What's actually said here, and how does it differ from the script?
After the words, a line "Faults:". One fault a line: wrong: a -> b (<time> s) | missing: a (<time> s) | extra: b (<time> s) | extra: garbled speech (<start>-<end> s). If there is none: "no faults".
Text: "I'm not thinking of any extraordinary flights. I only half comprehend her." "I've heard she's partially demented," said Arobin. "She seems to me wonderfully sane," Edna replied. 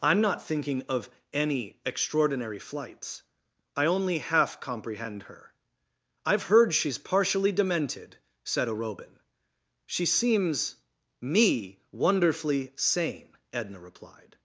"I'm not thinking of any extraordinary flights. I only half comprehend her." "I've heard she's partially demented," said Arobin. "She seems me wonderfully sane," Edna replied.
Faults:
missing: to (10.8 s)